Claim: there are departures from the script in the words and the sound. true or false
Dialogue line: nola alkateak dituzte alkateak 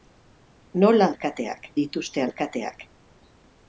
false